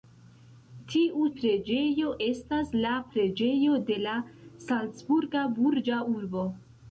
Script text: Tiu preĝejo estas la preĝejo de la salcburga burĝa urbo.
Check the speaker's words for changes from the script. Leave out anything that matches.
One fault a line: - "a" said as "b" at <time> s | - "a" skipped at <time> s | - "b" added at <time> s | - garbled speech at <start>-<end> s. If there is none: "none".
none